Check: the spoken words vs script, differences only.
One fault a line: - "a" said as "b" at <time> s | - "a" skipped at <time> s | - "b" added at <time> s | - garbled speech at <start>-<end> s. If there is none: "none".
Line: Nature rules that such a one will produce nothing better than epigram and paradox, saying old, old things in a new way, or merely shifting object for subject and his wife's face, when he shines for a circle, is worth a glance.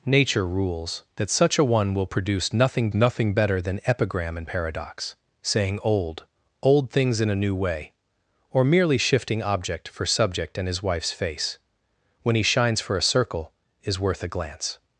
- "nothing" added at 2.9 s